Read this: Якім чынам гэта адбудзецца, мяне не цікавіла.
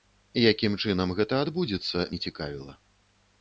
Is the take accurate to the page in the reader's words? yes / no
no